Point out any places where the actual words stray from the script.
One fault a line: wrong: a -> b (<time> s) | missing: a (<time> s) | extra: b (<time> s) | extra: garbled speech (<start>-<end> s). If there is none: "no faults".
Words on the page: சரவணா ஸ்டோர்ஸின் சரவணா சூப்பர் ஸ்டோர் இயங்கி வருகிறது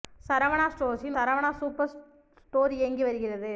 no faults